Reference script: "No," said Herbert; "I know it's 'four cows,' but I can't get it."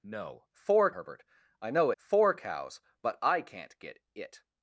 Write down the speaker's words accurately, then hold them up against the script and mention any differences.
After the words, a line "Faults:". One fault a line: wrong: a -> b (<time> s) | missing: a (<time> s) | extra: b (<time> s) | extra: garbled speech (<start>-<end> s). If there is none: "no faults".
"No," four Herbert; "I know 'four cows,' but I can't get it."
Faults:
wrong: said -> four (0.5 s)
missing: it's (1.9 s)